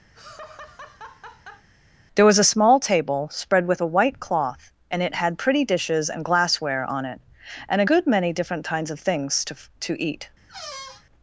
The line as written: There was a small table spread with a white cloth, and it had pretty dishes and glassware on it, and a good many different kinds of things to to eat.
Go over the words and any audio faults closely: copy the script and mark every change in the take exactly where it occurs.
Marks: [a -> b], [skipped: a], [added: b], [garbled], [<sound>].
[laugh] There was a small table spread with a white cloth, and it had pretty dishes and glassware on it, and a good many different kinds of things to to eat. [squeak]